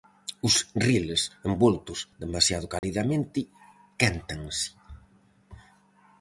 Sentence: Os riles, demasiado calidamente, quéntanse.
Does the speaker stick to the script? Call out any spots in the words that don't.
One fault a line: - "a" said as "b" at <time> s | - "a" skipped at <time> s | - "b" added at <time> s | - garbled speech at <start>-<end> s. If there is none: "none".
- "envoltos" added at 1.5 s